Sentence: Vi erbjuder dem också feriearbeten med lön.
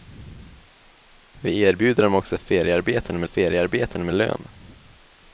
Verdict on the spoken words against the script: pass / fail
fail